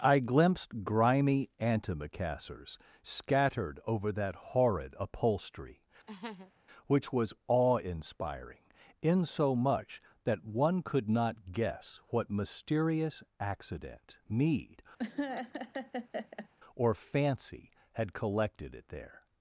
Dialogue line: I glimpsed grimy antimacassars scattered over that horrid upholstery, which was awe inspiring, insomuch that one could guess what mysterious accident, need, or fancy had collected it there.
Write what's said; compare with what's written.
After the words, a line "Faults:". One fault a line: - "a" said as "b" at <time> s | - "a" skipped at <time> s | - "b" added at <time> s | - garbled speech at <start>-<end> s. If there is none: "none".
I glimpsed grimy antimacassars scattered over that horrid upholstery, which was awe inspiring, insomuch that one could not guess what mysterious accident, need, or fancy had collected it there.
Faults:
- "not" added at 11.1 s